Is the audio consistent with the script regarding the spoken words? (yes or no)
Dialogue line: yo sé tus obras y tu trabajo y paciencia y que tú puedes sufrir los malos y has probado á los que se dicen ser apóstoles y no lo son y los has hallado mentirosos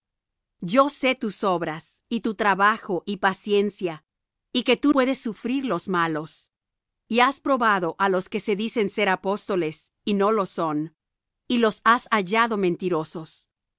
yes